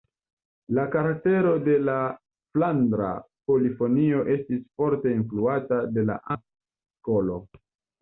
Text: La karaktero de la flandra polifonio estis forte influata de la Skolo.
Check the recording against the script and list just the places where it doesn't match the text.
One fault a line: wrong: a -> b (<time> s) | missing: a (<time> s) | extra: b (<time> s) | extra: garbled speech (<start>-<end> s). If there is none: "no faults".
no faults